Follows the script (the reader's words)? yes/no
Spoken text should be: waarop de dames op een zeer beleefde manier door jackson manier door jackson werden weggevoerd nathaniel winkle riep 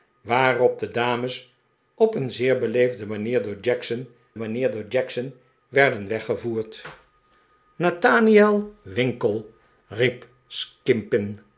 yes